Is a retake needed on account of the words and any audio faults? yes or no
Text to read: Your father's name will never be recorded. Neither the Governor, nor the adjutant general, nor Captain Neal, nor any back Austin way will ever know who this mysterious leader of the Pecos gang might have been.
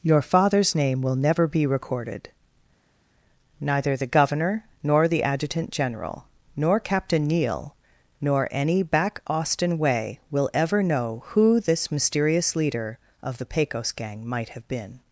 no